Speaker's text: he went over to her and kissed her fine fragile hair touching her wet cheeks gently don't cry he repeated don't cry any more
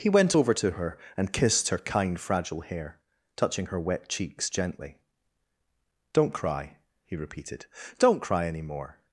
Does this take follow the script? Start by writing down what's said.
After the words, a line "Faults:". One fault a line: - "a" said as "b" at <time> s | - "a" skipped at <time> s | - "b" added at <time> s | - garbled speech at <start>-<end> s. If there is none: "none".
he went over to her and kissed her kind fragile hair touching her wet cheeks gently don't cry he repeated don't cry any more
Faults:
- "fine" said as "kind" at 1.8 s